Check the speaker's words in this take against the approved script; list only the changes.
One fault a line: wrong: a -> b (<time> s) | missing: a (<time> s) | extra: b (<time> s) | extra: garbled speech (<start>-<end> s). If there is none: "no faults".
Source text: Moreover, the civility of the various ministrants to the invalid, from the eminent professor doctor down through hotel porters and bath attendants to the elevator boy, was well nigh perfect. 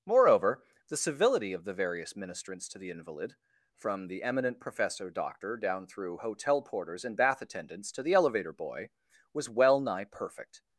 no faults